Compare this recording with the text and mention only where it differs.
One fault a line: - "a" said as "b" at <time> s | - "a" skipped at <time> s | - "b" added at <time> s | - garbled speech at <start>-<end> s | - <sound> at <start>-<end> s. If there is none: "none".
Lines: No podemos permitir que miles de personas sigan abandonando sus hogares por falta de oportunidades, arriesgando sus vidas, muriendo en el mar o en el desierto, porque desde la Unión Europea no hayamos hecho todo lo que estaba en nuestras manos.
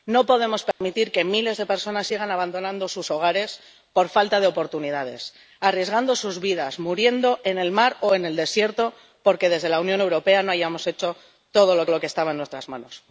- dropout at 0.7-0.8 s
- "lo" added at 11.9 s